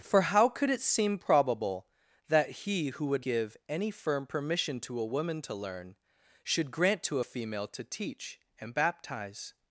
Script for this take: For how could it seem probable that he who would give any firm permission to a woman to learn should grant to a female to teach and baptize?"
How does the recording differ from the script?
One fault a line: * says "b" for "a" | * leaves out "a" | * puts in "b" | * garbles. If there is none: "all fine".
all fine